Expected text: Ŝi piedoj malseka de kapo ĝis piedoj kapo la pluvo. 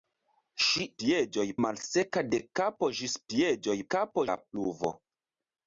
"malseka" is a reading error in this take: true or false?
false